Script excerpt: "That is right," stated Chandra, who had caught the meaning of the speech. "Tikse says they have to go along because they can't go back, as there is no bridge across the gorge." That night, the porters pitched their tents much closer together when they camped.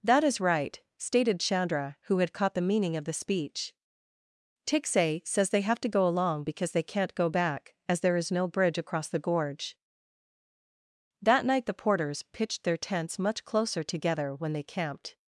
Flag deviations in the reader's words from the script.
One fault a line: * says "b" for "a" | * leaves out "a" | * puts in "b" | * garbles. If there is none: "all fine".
all fine